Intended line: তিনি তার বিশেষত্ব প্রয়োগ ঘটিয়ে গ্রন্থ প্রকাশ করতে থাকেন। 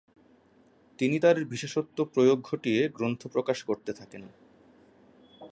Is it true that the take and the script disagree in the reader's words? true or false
false